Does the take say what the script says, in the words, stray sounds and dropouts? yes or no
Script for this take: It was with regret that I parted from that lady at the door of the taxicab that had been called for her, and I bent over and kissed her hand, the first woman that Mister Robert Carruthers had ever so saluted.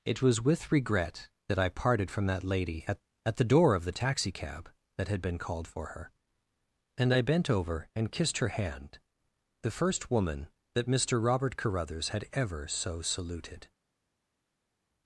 no